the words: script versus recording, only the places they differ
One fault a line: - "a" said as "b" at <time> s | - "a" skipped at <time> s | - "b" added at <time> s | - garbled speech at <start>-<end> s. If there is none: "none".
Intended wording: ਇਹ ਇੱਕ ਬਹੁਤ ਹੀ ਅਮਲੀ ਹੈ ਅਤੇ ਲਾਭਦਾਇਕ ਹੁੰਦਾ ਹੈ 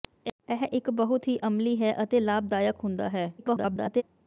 - garbled speech at 3.4-4.0 s